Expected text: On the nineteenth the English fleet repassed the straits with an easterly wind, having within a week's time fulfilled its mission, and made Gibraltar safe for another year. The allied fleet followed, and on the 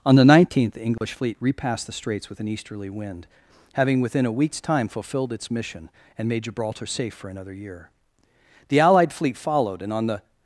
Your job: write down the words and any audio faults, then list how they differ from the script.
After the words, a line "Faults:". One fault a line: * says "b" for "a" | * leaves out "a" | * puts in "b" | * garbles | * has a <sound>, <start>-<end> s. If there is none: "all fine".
On the nineteenth the English fleet repassed the straits with an easterly wind, having within a week's time fulfilled its mission, and made Gibraltar safe for another year. The allied fleet followed, and on the
Faults:
* has a dropout, 1.0-1.0 s